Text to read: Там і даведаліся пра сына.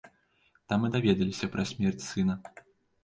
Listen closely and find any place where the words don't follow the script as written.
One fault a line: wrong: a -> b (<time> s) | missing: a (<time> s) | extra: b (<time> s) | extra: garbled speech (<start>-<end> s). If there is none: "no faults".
extra: смерць (1.7 s)